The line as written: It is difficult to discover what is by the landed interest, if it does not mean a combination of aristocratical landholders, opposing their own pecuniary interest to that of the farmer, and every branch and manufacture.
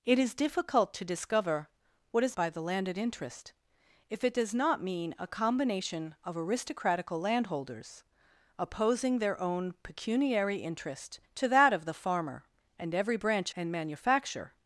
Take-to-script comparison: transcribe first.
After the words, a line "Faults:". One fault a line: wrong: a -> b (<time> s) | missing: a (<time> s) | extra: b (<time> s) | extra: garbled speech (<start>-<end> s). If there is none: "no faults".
It is difficult to discover what is by the landed interest, if it does not mean a combination of aristocratical landholders, opposing their own pecuniary interest to that of the farmer, and every branch and manufacture.
Faults:
no faults